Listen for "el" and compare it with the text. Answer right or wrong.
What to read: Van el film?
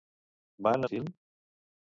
right